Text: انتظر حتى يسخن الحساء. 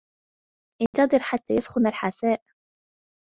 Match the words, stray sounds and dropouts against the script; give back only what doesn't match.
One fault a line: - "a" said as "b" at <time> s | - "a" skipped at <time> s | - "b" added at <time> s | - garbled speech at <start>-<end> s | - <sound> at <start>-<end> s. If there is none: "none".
- dropout at 0.9-0.9 s